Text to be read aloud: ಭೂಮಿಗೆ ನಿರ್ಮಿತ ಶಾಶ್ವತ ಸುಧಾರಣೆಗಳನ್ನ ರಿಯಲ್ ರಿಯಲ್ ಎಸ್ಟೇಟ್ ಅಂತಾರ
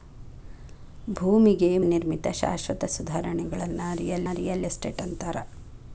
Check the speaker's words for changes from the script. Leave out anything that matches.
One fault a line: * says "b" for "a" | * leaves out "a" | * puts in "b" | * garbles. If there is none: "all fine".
all fine